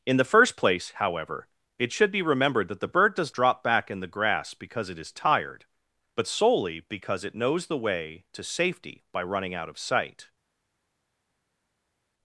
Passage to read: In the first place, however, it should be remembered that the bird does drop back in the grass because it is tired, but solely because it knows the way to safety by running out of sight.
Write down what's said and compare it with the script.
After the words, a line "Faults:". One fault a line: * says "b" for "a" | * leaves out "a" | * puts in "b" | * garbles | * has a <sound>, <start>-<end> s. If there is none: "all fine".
In the first place, however, it should be remembered that the bird does drop back in the grass because it is tired, but solely because it knows the way to safety by running out of sight.
Faults:
all fine